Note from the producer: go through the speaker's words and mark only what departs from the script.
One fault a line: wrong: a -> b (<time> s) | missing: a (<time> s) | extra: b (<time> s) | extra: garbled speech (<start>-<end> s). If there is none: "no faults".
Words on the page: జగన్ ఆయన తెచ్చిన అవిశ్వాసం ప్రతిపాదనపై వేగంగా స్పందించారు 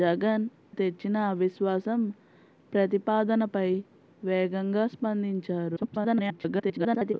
missing: ఆయన (0.4 s)
extra: garbled speech (5.8-7.1 s)